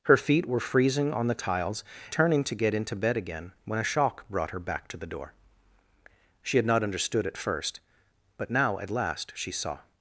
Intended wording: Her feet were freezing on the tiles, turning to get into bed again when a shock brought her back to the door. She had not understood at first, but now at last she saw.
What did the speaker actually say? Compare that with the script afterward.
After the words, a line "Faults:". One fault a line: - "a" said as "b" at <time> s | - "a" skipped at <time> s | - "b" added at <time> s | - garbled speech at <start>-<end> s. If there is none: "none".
Her feet were freezing on the tiles, turning to get into bed again when a shock brought her back to the door. She had not understood at first, but now at last she saw.
Faults:
none